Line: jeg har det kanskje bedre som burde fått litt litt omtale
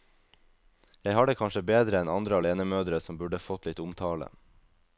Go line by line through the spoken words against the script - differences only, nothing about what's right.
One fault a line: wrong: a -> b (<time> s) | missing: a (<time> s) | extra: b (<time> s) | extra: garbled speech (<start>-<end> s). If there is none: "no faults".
extra: enn andre alenemødre (2.0 s)
missing: litt (3.8 s)